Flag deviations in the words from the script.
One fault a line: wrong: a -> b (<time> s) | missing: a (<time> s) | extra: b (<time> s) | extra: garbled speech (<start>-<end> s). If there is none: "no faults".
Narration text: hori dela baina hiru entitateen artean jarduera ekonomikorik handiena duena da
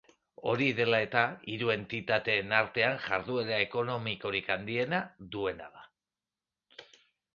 wrong: baina -> eta (1.1 s)